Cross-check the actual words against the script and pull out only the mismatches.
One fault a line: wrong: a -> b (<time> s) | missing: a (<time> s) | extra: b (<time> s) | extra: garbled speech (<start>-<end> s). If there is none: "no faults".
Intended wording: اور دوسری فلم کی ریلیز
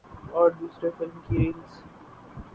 no faults